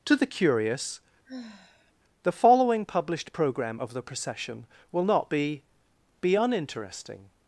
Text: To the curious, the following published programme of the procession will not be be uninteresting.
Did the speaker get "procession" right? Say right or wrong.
right